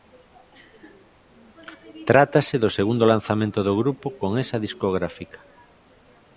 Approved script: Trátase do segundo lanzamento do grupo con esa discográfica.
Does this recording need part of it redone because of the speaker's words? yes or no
no